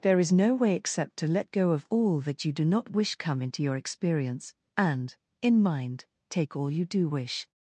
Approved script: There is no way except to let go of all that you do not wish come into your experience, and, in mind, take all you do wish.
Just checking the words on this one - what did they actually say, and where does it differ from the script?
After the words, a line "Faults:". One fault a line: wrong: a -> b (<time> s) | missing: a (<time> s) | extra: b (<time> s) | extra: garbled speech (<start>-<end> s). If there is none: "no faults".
There is no way except to let go of all that you do not wish come into your experience, and, in mind, take all you do wish.
Faults:
no faults